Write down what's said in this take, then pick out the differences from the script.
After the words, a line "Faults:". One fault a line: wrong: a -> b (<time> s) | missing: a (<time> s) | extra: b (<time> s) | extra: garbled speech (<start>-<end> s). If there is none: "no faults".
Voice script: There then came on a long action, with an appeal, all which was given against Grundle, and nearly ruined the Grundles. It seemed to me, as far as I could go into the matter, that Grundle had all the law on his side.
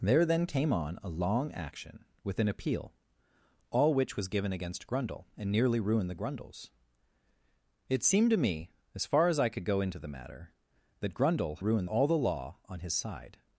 There then came on a long action, with an appeal, all which was given against Grundle, and nearly ruined the Grundles. It seemed to me, as far as I could go into the matter, that Grundle ruined all the law on his side.
Faults:
wrong: had -> ruined (11.6 s)